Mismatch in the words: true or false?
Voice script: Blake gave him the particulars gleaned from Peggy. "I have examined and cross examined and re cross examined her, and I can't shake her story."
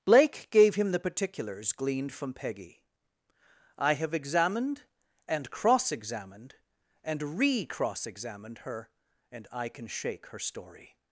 true